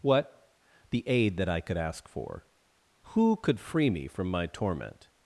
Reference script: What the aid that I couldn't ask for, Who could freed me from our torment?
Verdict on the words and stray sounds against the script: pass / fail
fail